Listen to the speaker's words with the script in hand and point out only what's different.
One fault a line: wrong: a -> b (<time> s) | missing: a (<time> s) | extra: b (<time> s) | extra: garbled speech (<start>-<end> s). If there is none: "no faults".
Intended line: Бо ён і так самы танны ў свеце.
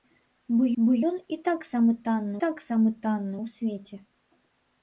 extra: бо (0.8 s)
extra: так самы танны (2.5 s)